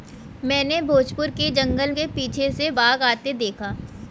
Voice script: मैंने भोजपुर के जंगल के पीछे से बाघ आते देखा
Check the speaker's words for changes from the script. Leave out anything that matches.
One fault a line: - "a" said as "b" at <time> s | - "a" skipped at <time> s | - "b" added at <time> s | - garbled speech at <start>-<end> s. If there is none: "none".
none